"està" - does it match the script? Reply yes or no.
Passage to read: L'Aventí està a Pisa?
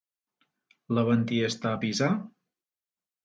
yes